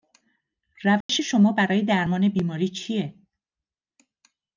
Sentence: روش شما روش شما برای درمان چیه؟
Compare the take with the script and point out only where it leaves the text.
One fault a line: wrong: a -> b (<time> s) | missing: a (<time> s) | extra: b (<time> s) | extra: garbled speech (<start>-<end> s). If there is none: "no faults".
missing: روش شما (1.5 s)
extra: بیماری (2.3 s)